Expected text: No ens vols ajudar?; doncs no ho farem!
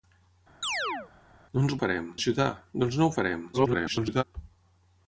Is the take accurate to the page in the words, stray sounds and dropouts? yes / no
no